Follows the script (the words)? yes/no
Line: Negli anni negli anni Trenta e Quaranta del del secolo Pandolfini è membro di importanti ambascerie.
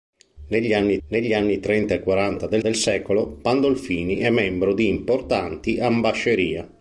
yes